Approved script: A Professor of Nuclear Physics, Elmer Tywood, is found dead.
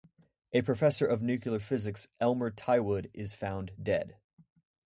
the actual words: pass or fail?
pass